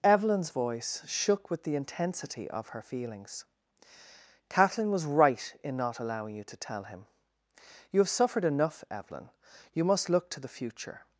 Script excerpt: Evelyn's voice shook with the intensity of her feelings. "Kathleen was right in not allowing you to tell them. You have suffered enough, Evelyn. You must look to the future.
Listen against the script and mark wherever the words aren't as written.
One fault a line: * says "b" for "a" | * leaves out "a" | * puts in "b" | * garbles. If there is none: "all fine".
* says "him" for "them"